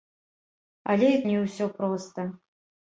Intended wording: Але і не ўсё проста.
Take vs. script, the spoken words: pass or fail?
pass